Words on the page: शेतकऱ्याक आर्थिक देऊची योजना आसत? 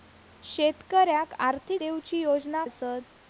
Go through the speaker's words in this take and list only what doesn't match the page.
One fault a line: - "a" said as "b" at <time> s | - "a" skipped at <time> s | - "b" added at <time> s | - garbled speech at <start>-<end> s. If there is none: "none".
none